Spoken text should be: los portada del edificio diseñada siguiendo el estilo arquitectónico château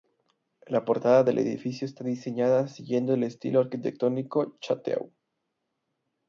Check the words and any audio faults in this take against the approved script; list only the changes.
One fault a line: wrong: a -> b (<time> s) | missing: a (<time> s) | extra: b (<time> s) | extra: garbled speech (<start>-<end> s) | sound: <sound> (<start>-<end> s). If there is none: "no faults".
wrong: los -> la (0.7 s)
extra: está (1.9 s)